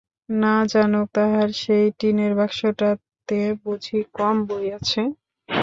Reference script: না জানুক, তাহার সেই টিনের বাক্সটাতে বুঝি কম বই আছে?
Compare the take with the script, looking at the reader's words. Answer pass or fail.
pass